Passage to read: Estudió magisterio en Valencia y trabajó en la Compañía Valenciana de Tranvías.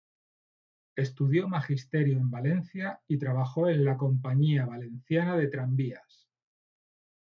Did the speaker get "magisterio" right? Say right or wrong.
right